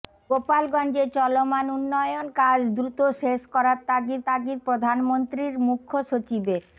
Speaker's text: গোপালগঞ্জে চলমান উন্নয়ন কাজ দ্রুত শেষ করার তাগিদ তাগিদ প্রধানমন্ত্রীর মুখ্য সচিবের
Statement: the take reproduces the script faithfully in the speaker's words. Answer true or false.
true